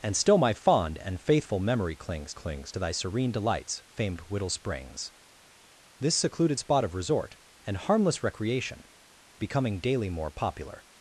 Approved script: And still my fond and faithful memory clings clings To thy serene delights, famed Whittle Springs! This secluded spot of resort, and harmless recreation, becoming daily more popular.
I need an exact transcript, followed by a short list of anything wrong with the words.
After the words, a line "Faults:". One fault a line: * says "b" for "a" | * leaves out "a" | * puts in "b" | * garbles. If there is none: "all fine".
And still my fond and faithful memory clings clings To thy serene delights, famed Whittle Springs! This secluded spot of resort, and harmless recreation, becoming daily more popular.
Faults:
all fine